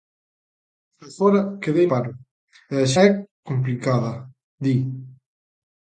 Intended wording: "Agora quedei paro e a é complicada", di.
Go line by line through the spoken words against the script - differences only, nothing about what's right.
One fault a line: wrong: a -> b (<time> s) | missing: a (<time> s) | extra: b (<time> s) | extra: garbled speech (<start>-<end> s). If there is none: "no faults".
no faults